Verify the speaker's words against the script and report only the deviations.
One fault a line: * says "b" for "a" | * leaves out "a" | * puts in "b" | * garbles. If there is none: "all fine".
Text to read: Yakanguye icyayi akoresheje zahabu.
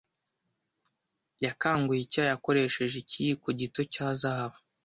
* puts in "ikiyiko gito cya"